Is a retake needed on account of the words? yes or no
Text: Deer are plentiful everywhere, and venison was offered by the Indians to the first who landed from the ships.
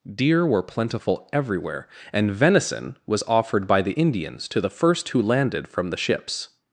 yes